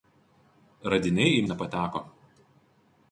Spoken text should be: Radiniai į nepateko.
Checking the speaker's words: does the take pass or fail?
pass